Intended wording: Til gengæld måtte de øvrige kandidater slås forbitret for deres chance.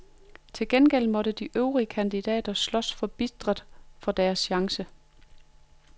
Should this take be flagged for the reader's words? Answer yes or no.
no